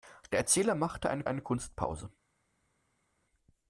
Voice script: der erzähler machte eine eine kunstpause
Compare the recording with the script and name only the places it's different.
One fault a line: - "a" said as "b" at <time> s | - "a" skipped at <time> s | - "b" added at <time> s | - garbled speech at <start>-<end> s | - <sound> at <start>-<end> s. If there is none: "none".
none